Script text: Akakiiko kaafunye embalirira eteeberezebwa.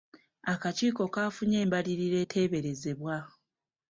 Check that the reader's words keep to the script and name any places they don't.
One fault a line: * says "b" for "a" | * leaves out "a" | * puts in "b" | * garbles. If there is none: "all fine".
all fine